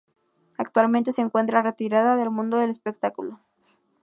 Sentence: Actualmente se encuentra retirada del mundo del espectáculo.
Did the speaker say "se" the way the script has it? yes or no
yes